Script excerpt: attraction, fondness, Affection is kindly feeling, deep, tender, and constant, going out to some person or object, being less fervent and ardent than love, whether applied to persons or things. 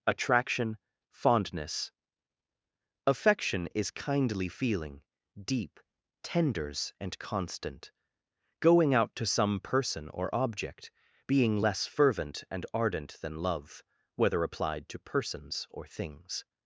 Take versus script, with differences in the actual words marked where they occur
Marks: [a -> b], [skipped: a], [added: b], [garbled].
attraction, fondness, Affection is kindly feeling, deep, [tender, -> tenders] and constant, going out to some person or object, being less fervent and ardent than love, whether applied to persons or things.